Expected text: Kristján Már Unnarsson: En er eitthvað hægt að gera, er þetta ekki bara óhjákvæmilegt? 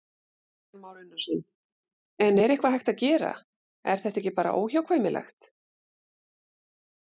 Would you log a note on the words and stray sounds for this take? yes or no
no